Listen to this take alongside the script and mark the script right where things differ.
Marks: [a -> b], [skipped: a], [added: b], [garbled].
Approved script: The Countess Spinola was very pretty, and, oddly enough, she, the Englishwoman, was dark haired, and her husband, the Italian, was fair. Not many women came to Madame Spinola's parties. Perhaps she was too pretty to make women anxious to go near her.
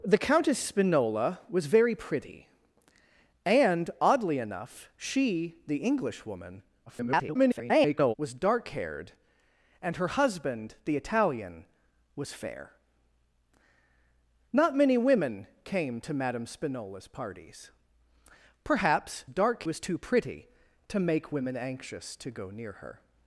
The Countess Spinola was very pretty, and, oddly enough, she, the Englishwoman, [garbled] was dark haired, and her husband, the Italian, was fair. Not many women came to Madame Spinola's parties. Perhaps [she -> dark] was too pretty to make women anxious to go near her.